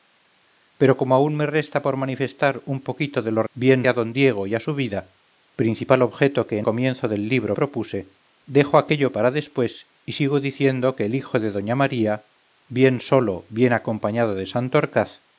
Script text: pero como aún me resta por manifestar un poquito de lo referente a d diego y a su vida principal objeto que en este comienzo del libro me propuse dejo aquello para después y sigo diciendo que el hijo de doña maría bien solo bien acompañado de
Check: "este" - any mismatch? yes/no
yes